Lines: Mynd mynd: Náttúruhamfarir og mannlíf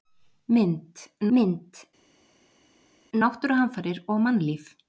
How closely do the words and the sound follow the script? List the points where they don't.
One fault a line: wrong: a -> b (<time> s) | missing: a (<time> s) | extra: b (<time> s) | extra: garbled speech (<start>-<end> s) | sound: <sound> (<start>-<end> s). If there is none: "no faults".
no faults